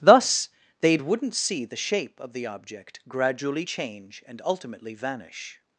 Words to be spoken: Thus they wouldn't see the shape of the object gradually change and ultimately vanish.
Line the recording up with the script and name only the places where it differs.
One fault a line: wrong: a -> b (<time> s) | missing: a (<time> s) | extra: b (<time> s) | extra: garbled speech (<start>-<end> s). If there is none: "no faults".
no faults